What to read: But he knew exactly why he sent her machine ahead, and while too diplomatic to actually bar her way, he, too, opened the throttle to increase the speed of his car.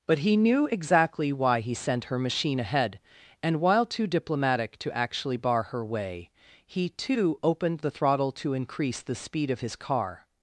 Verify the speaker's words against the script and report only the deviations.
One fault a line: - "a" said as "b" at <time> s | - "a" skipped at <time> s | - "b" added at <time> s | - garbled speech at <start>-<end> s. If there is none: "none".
none